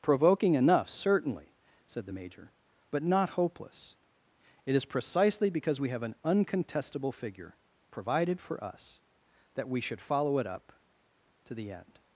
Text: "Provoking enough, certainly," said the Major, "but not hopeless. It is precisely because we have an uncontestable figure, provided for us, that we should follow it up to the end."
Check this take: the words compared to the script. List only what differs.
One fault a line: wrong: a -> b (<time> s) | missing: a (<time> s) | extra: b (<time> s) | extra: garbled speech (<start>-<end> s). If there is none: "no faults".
no faults